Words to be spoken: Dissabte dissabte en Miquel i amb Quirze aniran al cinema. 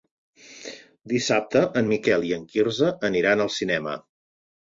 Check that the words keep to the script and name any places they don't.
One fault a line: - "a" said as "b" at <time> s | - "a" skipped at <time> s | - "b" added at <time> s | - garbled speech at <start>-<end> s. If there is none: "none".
- "dissabte" skipped at 1.6 s
- "amb" said as "en" at 2.4 s